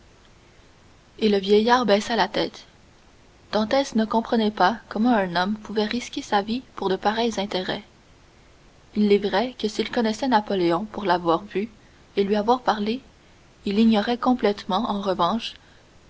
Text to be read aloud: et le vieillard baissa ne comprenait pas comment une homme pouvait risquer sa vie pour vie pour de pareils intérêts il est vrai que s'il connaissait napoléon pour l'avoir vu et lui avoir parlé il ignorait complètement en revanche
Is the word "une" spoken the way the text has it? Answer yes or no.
no